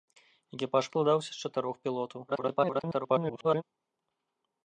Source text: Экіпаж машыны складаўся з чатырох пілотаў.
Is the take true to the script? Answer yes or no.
no